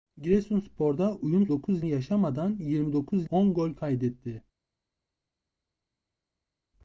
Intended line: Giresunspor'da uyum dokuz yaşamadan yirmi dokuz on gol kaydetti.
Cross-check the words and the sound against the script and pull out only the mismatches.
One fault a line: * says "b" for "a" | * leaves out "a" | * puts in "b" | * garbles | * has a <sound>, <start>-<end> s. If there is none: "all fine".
all fine